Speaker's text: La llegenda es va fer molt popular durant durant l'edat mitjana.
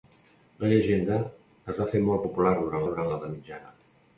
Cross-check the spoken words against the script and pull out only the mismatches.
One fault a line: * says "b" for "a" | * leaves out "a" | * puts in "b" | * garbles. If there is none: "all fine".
all fine